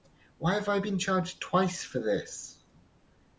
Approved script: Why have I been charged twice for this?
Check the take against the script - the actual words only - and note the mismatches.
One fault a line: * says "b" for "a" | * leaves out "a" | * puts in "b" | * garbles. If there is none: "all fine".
all fine